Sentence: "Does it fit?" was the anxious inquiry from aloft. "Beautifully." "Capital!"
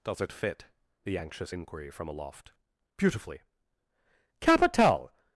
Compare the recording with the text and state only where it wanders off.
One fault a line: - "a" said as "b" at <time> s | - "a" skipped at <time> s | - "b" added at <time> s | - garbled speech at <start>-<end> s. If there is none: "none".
- "was" skipped at 0.7 s